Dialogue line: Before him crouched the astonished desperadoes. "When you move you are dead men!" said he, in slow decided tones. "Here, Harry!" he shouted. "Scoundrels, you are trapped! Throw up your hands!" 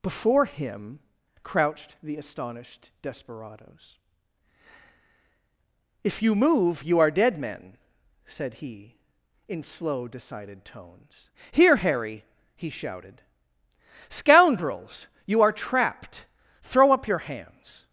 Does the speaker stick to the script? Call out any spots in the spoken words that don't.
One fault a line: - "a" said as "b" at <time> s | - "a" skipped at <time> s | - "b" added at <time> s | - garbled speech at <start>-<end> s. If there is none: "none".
- "When" said as "If" at 6.0 s